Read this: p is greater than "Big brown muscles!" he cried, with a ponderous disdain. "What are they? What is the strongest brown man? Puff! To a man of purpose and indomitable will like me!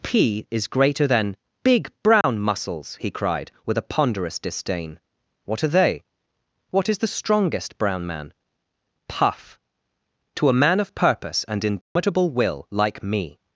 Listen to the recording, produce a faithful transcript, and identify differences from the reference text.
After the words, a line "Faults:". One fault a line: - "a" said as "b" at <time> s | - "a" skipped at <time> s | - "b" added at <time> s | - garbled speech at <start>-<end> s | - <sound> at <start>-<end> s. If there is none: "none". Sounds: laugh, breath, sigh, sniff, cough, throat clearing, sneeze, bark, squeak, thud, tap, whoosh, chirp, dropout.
p is greater than "Big brown muscles!" he cried, with a ponderous disdain. "What are they? What is the strongest brown man? Puff! To a man of purpose and indomitable will like me!
Faults:
- dropout at 2.2-2.2 s
- dropout at 11.8-12.0 s